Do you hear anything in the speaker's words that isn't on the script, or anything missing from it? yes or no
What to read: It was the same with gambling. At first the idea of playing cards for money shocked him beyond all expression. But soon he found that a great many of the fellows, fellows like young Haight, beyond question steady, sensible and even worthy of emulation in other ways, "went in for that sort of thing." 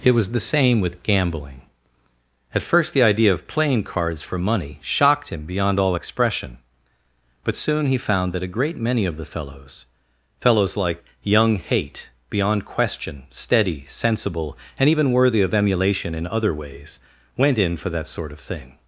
no